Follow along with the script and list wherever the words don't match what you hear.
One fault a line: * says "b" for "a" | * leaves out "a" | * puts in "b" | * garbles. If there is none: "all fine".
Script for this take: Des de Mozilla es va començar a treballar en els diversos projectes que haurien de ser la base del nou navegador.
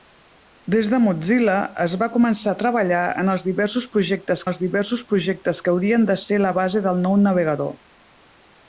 * puts in "els diversos projectes"